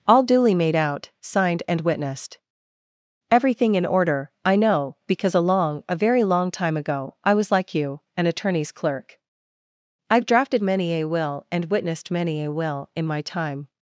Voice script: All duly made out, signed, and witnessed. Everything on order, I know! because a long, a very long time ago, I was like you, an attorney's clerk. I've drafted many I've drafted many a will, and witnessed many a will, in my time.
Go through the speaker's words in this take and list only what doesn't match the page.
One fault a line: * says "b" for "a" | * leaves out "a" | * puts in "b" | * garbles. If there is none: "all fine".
* says "in" for "on"
* leaves out "I've drafted many"